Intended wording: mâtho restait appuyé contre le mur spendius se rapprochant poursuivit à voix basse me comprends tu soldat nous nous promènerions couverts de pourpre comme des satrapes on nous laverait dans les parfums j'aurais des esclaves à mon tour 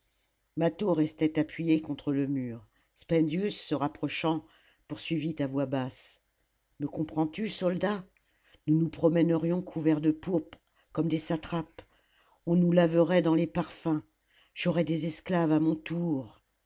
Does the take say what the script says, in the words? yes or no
yes